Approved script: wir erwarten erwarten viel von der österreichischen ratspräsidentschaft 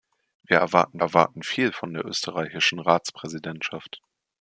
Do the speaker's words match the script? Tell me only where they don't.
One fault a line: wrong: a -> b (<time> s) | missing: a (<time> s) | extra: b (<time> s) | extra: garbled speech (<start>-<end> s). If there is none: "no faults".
no faults